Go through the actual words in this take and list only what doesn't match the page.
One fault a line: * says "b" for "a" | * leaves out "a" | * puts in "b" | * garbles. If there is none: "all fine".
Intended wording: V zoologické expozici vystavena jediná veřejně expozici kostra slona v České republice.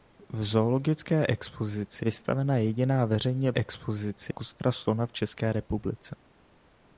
all fine